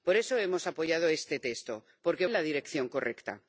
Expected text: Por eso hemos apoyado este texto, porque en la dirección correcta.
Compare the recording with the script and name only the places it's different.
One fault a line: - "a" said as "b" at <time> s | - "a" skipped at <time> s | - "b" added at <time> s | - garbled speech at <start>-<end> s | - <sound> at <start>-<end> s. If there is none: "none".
none